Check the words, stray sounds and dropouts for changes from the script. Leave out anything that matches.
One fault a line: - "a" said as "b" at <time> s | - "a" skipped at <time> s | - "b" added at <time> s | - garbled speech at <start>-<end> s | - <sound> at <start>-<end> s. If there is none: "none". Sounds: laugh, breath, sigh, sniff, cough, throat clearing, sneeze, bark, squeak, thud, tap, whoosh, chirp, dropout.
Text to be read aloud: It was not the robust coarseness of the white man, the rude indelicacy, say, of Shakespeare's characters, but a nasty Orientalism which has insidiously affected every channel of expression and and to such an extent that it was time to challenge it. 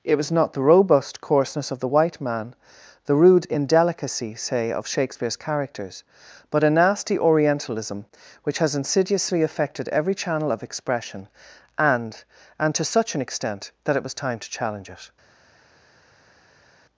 none